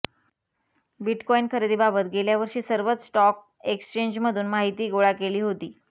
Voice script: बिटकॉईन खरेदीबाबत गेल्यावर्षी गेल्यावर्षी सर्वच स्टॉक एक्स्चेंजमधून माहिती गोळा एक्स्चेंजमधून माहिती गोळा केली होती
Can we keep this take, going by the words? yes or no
no